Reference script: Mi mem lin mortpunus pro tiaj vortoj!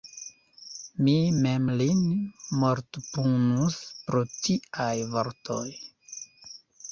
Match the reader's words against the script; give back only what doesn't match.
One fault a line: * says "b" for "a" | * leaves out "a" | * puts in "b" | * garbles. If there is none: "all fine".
all fine